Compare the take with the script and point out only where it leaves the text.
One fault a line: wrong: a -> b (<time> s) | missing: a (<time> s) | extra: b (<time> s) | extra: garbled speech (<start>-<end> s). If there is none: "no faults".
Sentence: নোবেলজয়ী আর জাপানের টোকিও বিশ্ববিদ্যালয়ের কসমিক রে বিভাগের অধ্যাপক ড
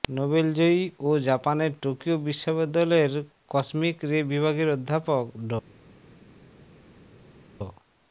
wrong: আর -> ও (1.0 s)